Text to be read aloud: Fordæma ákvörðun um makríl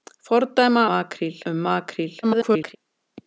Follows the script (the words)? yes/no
no